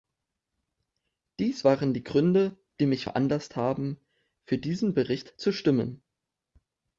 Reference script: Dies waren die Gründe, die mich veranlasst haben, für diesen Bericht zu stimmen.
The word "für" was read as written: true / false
true